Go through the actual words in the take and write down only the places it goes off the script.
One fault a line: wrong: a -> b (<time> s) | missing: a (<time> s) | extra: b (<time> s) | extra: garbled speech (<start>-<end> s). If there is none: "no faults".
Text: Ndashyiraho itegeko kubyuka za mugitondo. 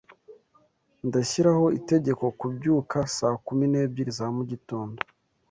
extra: saa kumi n'ebyiri (3.2 s)